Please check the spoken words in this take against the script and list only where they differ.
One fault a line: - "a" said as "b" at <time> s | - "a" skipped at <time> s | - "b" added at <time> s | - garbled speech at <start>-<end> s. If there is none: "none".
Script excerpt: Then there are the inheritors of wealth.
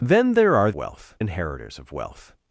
- "the" said as "wealth" at 0.7 s